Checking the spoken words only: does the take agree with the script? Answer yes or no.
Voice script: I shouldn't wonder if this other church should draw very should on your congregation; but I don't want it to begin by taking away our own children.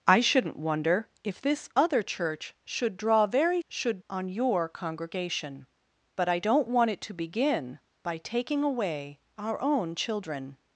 yes